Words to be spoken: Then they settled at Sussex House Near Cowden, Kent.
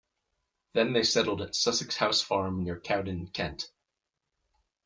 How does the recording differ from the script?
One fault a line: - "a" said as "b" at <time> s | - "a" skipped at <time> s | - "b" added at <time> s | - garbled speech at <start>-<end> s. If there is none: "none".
- "Farm" added at 2.2 s